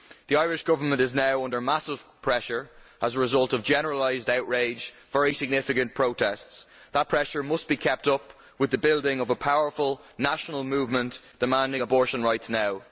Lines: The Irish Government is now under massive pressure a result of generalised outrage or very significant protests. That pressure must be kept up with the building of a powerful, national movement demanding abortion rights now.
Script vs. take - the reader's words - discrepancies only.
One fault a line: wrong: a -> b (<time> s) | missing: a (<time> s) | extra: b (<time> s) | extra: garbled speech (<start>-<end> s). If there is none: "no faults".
extra: as (3.0 s)
wrong: or -> and (4.9 s)